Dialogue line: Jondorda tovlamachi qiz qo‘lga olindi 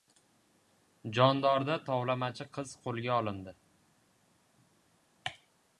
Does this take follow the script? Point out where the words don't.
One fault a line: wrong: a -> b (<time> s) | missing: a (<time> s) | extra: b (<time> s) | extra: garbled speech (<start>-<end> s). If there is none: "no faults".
no faults